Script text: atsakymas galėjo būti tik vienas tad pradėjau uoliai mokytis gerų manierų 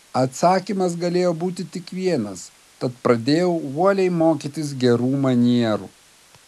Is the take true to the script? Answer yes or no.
yes